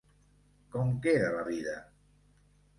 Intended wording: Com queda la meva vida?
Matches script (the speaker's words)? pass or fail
fail